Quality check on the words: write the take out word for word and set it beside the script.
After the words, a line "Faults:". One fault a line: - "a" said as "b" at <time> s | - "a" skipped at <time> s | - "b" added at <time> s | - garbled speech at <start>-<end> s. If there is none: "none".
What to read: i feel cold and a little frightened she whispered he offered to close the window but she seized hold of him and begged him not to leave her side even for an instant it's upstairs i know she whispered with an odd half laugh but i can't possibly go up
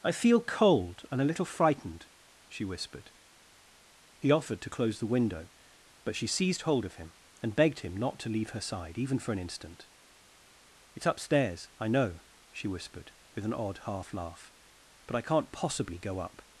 i feel cold and a little frightened she whispered he offered to close the window but she seized hold of him and begged him not to leave her side even for an instant it's upstairs i know she whispered with an odd half laugh but i can't possibly go up
Faults:
none